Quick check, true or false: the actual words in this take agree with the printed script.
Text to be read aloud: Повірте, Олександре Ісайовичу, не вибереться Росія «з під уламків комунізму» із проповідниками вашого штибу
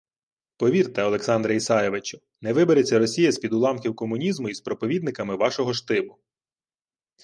true